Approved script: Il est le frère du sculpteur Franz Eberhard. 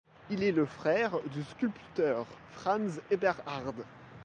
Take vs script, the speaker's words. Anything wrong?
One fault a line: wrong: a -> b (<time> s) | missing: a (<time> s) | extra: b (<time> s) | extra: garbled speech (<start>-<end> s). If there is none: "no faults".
no faults